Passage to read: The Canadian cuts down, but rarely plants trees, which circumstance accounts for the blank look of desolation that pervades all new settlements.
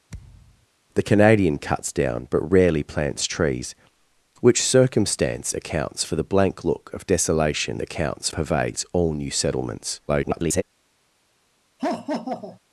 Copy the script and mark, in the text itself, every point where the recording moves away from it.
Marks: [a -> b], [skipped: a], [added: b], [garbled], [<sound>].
[thud] The Canadian cuts down, but rarely plants trees, which circumstance accounts for the blank look of desolation [that -> accounts] pervades all new settlements. [garbled] [laugh]